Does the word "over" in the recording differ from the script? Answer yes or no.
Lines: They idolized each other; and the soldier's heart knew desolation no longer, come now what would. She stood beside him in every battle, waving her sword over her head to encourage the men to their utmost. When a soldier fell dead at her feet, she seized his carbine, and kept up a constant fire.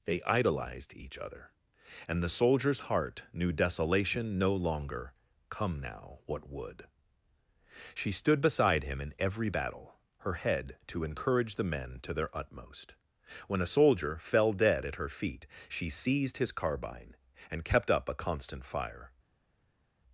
yes